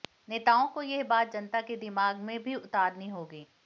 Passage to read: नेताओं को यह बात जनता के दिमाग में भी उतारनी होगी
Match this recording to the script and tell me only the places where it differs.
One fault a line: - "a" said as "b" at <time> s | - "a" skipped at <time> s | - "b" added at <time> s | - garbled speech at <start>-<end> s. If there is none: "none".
none